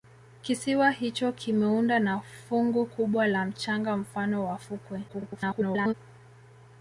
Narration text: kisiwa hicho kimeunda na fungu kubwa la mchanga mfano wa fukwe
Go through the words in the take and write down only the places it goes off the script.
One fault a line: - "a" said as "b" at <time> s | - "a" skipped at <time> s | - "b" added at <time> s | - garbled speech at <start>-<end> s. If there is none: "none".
- garbled speech at 5.1-5.9 s